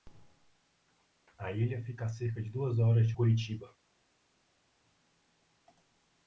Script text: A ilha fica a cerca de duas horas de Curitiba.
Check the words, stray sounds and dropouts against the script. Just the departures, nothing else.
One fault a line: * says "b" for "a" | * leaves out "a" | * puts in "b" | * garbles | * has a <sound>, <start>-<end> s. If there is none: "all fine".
all fine